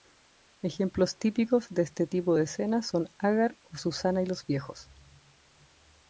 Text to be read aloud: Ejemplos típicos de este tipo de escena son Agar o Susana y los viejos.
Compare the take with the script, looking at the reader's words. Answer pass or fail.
pass